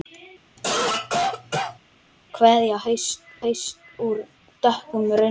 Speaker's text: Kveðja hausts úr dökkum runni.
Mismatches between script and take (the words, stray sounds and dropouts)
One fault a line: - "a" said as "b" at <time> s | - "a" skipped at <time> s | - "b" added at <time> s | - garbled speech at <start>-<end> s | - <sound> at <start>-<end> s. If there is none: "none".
- cough at 0.6-1.8 s
- "hausts" added at 3.4 s